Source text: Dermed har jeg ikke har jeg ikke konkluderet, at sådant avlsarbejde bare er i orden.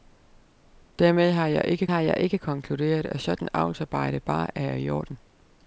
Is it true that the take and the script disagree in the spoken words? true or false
false